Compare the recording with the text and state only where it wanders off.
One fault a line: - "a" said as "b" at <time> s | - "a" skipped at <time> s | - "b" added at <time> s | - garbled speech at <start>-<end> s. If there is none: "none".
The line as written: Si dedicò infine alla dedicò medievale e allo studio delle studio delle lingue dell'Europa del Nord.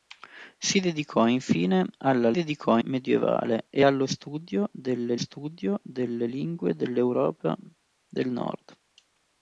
none